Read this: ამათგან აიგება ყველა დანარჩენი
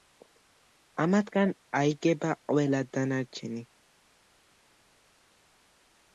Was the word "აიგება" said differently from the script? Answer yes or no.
no